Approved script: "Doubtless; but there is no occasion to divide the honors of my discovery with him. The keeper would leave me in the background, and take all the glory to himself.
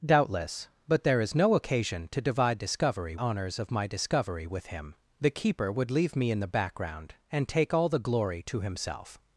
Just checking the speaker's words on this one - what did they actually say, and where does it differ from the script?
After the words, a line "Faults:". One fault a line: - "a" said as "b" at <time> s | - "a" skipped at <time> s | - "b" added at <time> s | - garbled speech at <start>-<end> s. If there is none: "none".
"Doubtless; but there is no occasion to divide discovery honors of my discovery with him. The keeper would leave me in the background, and take all the glory to himself.
Faults:
- "the" said as "discovery" at 2.6 s